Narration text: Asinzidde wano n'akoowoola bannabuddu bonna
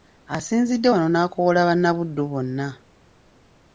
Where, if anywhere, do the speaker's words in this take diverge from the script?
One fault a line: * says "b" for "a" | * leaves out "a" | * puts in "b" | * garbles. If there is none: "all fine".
all fine